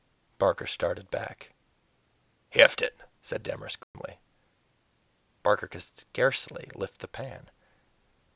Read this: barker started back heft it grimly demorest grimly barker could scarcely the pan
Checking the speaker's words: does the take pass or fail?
fail